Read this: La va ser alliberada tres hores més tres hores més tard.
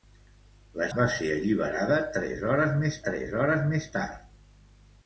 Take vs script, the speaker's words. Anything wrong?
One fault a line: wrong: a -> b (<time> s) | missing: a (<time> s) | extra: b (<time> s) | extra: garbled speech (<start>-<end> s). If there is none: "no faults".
no faults